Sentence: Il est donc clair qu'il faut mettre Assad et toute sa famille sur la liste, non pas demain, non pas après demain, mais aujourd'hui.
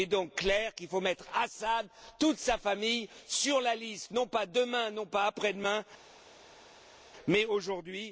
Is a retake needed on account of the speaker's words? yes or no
no